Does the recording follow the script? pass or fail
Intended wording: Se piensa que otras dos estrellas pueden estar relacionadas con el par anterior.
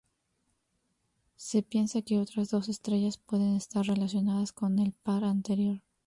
pass